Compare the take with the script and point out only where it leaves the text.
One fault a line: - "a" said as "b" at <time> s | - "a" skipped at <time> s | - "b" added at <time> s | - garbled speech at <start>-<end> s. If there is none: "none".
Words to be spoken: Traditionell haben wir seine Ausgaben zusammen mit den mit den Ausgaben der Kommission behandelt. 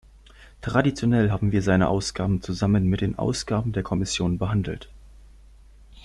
- "mit den" skipped at 3.2 s